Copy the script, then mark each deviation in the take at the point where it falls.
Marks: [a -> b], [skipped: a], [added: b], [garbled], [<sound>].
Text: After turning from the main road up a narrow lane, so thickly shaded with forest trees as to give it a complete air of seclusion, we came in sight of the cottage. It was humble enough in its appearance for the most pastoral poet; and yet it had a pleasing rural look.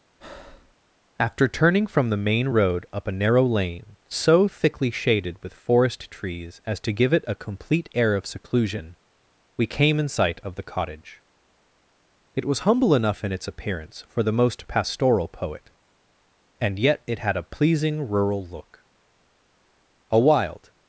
[breath] After turning from the main road up a narrow lane, so thickly shaded with forest trees as to give it a complete air of seclusion, we came in sight of the cottage. It was humble enough in its appearance for the most pastoral poet; and yet it had a pleasing rural look. [added: A wild]